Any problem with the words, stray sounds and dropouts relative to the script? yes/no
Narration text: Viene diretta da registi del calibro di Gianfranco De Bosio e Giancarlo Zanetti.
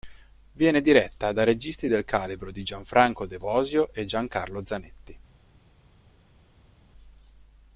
no